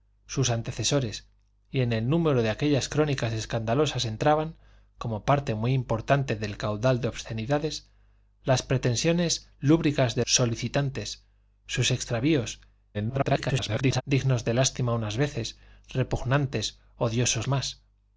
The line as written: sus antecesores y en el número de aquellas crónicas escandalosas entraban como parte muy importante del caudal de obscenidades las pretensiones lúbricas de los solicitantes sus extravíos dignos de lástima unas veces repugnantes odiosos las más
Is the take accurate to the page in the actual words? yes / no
no